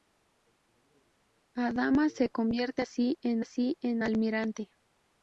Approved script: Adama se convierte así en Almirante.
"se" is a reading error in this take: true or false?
false